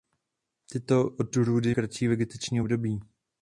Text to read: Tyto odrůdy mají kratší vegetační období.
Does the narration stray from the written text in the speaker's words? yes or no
yes